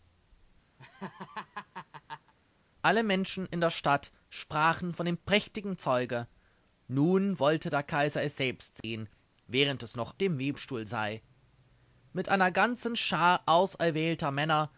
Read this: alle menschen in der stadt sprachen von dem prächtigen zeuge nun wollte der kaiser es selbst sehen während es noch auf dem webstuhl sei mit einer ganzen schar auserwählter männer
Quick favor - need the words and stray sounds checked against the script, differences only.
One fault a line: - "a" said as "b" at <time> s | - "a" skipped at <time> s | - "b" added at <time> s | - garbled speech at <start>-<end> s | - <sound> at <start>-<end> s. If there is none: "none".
- laugh at 0.8-2.3 s
- dropout at 8.8-8.8 s
- "auf" skipped at 10.1 s